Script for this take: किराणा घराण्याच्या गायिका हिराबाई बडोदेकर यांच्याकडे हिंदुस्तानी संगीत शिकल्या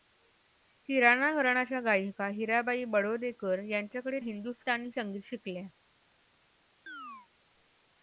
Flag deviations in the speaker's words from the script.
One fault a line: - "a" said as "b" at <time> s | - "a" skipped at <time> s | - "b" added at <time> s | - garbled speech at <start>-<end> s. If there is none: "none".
none